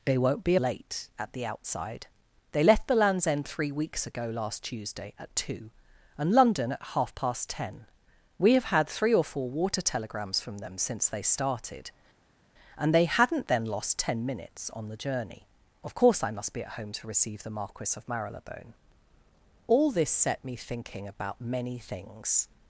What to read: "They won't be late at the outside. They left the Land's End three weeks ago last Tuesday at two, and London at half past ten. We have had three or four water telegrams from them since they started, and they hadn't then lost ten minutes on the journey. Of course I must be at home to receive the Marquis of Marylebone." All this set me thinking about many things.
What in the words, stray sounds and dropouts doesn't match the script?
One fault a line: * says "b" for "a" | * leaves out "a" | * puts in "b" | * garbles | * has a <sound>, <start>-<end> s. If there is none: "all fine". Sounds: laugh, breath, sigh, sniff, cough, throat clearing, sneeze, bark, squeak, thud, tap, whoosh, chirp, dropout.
all fine